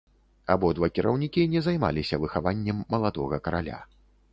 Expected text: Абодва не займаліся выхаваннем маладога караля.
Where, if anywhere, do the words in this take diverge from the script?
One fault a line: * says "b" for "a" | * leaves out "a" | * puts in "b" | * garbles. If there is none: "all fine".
* puts in "кіраўнікі"